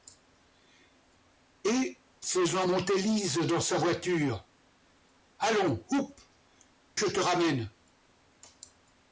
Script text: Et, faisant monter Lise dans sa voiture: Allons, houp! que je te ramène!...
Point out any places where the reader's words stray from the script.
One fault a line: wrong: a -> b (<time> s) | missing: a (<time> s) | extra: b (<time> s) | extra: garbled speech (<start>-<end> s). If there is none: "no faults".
missing: que (6.1 s)